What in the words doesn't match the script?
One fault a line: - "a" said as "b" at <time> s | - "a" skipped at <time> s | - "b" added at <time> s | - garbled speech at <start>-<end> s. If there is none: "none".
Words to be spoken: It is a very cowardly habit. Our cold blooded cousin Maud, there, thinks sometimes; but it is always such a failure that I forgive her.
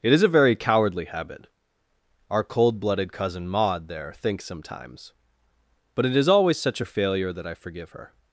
none